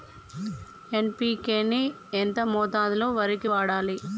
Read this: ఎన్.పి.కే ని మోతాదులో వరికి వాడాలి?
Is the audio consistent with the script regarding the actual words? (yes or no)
no